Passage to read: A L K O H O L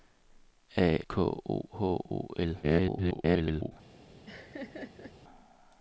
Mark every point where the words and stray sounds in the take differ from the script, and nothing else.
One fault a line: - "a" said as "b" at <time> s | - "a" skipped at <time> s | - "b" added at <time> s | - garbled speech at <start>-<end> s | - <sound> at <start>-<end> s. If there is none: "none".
- "L" skipped at 1.0 s
- garbled speech at 2.6-3.7 s
- laugh at 4.3-5.1 s